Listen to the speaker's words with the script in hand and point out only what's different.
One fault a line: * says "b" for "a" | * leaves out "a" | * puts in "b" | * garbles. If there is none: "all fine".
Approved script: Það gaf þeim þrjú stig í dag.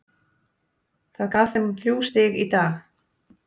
all fine